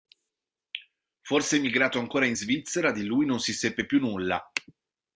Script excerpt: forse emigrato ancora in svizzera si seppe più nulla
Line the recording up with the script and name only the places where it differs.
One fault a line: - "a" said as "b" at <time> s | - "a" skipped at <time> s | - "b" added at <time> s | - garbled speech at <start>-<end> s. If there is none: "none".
- "di lui non" added at 2.9 s